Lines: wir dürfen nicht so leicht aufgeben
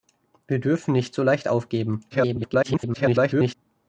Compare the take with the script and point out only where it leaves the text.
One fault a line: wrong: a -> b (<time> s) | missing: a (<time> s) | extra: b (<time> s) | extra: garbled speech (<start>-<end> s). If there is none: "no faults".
extra: garbled speech (2.1-3.5 s)